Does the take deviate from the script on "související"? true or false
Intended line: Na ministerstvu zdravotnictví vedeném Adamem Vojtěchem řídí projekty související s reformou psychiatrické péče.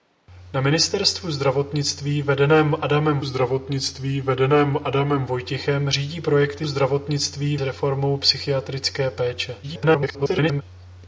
true